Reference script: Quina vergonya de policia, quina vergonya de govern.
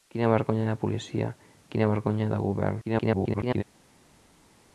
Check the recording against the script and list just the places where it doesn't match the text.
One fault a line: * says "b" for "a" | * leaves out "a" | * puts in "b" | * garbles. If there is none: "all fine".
* garbles